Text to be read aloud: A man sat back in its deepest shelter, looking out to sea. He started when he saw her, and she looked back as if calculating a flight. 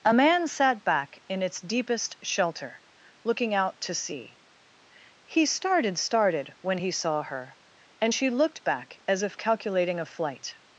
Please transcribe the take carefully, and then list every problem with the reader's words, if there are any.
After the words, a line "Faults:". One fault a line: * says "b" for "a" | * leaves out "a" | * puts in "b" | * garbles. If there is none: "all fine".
A man sat back in its deepest shelter, looking out to sea. He started started when he saw her, and she looked back as if calculating a flight.
Faults:
* puts in "started"